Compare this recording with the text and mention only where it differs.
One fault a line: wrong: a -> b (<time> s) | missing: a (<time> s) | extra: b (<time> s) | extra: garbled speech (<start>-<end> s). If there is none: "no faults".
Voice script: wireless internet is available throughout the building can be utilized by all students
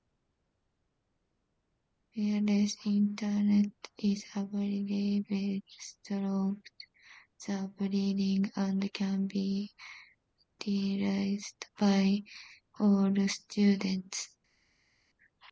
extra: and (8.6 s)